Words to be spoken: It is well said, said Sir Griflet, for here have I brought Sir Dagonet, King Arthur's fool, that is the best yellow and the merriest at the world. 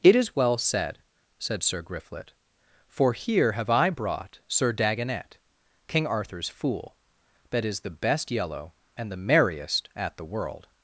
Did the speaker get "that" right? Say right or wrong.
right